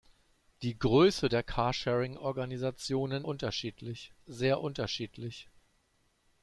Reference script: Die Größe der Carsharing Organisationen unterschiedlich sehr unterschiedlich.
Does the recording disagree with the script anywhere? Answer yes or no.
no